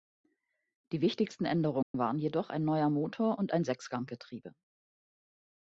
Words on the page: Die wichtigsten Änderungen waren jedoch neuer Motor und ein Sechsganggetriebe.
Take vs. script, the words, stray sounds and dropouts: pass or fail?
fail